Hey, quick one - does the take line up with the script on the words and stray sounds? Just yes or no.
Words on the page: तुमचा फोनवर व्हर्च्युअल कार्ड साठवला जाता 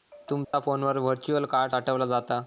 no